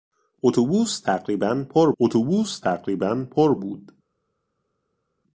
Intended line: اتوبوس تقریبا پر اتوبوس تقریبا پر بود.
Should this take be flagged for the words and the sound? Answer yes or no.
no